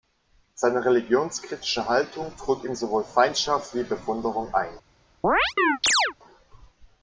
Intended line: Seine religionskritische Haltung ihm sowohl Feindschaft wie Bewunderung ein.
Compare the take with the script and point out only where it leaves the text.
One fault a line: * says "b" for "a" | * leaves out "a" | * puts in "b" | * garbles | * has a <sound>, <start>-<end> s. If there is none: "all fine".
* puts in "trug"
* has a chirp, 5.2-6.1 s